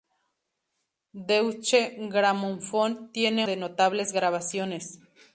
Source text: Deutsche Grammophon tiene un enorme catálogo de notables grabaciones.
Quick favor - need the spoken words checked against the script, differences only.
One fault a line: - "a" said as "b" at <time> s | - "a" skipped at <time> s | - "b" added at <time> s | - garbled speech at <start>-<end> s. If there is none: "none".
- "un enorme catálogo" skipped at 3.5 s